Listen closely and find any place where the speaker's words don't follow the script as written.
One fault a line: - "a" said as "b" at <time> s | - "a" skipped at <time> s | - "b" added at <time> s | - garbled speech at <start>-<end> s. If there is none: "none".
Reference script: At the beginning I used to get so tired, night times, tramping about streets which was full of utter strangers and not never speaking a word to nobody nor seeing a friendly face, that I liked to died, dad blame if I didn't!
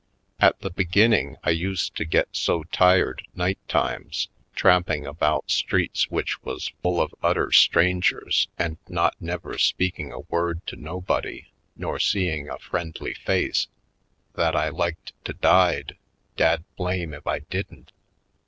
none